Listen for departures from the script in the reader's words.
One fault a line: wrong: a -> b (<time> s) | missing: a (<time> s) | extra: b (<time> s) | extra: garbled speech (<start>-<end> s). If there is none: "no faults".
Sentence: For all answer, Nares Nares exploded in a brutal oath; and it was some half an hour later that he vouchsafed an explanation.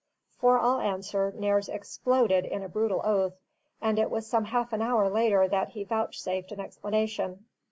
missing: Nares (1.7 s)